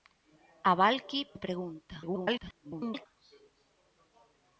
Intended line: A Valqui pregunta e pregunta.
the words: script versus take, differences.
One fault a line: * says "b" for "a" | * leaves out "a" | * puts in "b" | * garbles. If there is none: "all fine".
* leaves out "pregunta"
* garbles